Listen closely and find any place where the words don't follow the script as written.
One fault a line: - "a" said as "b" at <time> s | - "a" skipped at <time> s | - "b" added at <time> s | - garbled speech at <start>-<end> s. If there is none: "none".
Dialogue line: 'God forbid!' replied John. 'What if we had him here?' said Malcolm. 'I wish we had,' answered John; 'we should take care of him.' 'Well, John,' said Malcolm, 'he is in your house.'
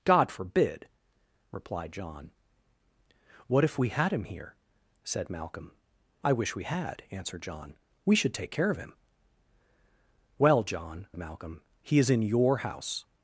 - "said" skipped at 11.1 s